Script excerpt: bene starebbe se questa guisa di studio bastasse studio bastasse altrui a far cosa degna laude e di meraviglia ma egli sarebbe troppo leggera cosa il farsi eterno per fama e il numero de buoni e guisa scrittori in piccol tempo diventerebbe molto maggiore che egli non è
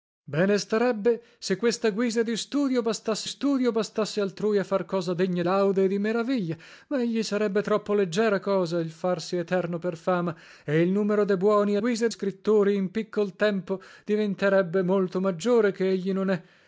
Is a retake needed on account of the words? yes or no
no